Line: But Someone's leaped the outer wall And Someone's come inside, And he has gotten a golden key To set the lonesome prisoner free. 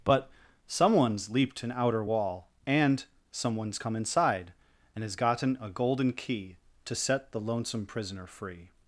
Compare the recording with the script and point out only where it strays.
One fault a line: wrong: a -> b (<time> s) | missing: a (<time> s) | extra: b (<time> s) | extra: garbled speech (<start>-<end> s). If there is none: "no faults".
wrong: the -> an (1.6 s)
missing: he (5.0 s)